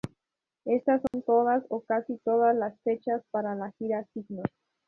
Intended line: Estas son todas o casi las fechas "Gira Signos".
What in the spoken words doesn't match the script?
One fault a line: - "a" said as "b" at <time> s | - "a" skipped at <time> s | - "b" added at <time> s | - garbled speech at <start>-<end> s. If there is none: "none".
- "todas" added at 2.2 s
- "para la" added at 3.3 s